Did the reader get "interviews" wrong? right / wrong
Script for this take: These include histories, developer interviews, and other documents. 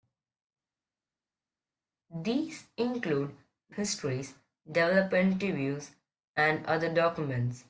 right